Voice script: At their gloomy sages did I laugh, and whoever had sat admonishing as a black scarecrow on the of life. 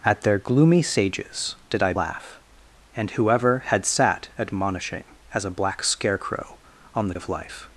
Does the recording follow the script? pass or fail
pass